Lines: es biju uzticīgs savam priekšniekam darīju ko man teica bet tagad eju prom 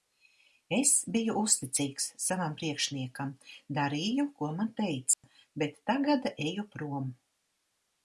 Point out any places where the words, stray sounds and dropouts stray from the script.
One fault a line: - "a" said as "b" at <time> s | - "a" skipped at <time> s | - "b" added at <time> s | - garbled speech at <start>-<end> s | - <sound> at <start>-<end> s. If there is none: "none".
- dropout at 5.1-5.2 s